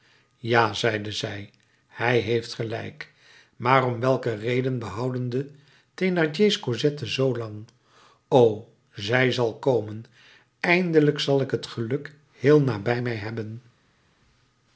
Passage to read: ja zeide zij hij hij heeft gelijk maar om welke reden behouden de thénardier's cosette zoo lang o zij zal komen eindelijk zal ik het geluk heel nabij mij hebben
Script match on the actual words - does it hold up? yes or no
no